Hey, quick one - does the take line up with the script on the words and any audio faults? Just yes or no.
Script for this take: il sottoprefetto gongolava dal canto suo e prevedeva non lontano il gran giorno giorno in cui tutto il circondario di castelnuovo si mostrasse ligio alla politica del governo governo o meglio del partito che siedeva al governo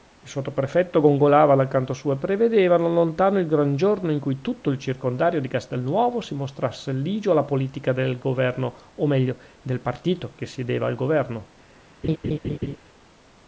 no